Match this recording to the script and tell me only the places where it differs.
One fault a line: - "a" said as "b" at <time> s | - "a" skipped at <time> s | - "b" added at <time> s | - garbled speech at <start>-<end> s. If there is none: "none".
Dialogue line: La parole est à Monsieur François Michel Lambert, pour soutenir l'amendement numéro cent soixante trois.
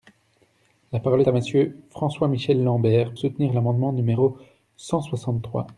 - "est" skipped at 1.2 s
- "pour" skipped at 3.1 s